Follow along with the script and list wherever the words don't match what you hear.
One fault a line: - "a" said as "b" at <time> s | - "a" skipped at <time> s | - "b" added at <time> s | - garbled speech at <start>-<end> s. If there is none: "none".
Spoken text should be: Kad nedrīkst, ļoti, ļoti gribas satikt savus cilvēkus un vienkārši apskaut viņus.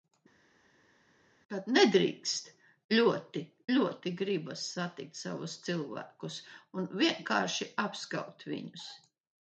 none